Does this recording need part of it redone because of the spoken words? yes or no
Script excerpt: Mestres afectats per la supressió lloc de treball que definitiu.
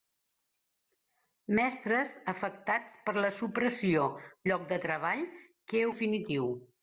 no